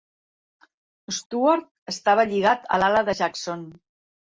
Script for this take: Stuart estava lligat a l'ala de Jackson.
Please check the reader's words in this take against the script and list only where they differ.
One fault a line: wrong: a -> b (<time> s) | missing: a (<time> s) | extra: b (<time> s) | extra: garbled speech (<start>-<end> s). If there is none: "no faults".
no faults